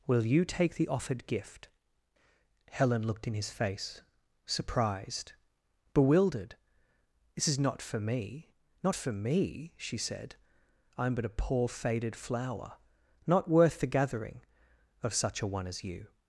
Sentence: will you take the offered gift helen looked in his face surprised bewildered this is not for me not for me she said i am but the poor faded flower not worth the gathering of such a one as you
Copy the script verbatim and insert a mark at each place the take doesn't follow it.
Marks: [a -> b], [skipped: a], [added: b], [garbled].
will you take the offered gift helen looked in his face surprised bewildered this is not for me not for me she said i am but [the -> a] poor faded flower not worth the gathering of such a one as you